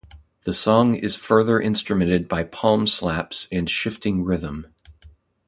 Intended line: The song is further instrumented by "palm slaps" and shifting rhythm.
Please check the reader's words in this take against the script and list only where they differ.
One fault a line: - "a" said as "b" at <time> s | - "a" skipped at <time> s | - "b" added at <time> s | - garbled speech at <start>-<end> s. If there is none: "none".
none